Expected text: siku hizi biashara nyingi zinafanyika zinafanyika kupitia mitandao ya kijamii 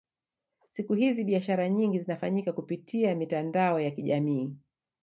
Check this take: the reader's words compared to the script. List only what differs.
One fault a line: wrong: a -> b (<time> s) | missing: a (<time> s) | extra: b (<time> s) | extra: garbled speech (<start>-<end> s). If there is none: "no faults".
missing: zinafanyika (2.5 s)